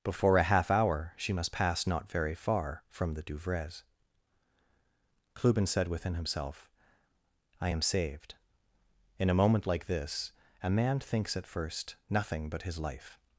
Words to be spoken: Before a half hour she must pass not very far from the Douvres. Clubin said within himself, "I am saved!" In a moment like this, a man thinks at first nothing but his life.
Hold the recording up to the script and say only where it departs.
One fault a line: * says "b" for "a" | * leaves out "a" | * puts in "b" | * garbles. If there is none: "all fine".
all fine